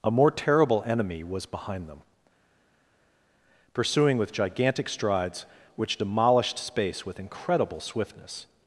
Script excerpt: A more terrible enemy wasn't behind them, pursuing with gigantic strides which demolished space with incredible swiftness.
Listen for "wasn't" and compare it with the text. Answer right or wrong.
wrong